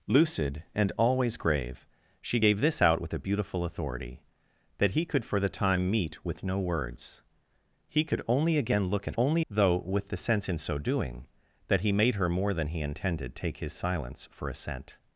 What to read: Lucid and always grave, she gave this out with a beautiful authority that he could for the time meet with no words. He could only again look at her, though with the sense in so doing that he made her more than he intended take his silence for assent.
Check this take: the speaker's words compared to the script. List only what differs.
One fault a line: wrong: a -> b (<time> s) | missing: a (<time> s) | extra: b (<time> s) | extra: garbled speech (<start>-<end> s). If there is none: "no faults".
wrong: her -> only (9.2 s)